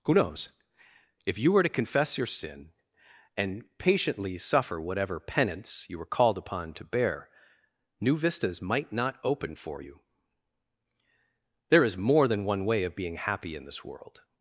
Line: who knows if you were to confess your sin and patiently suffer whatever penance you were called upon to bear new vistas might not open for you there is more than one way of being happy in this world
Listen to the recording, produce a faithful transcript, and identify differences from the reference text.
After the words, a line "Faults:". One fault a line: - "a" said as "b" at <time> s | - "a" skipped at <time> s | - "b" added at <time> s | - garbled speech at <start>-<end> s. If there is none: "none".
who knows if you were to confess your sin and patiently suffer whatever penance you were called upon to bear new vistas might not open for you there is more than one way of being happy in this world
Faults:
none